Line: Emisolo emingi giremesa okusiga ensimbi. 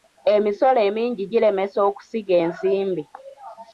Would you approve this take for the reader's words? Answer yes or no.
yes